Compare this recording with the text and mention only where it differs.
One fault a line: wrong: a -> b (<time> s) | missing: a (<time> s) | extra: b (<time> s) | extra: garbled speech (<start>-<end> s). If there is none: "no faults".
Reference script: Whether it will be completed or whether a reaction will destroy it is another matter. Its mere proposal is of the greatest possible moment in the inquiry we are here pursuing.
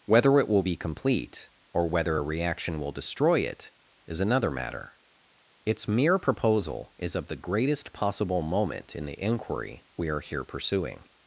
wrong: completed -> complete (0.8 s)